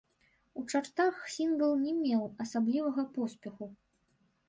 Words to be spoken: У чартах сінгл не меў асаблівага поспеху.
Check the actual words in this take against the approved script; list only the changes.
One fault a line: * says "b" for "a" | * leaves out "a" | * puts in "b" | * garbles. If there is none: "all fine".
all fine